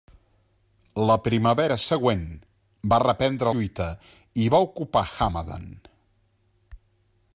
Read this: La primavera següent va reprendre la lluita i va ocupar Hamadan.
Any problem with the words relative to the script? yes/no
yes